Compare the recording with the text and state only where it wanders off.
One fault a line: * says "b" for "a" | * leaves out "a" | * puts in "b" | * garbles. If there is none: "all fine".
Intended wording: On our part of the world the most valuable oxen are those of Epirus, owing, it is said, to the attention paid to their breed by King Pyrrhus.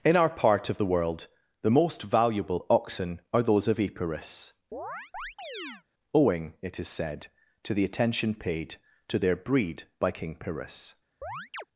* says "In" for "On"